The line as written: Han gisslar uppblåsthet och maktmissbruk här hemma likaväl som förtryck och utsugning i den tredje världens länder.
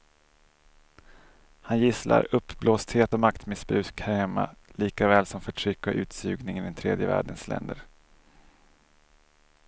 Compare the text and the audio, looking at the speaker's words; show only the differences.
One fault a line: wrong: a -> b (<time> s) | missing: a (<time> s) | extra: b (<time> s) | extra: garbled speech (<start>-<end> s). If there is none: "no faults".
no faults